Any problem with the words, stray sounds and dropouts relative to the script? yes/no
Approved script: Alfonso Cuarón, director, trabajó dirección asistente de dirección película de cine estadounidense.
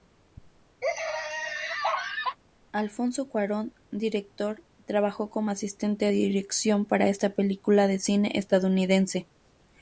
yes